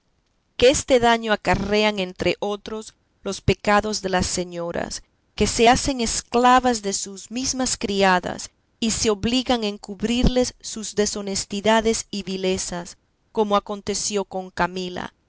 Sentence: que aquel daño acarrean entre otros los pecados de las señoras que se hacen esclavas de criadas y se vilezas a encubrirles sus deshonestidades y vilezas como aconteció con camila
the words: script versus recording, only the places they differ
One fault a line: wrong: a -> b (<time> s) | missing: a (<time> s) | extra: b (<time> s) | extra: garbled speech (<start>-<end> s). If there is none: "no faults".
wrong: aquel -> este (0.7 s)
extra: sus mesmas (6.9 s)
wrong: vilezas -> obligan (9.1 s)